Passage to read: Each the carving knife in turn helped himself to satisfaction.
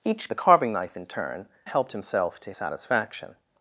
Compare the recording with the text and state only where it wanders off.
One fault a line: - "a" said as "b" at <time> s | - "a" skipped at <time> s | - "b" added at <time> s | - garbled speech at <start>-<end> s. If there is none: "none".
none